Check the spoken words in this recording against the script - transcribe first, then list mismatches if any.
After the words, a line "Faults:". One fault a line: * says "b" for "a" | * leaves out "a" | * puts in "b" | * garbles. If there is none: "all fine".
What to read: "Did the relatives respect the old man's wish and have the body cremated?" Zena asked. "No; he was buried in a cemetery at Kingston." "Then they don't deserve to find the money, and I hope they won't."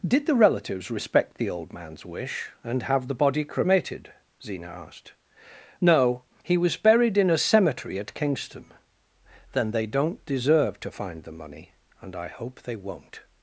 "Did the relatives respect the old man's wish and have the body cremated?" Zena asked. "No; he was buried in a cemetery at Kingston." "Then they don't deserve to find the money, and I hope they won't."
Faults:
all fine